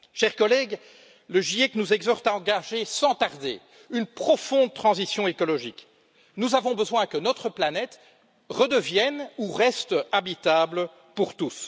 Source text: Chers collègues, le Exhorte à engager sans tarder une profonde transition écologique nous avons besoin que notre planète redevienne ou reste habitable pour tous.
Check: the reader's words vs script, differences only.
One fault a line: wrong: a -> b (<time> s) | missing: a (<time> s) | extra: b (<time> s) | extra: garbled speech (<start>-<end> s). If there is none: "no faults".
extra: GIEC nous (1.4 s)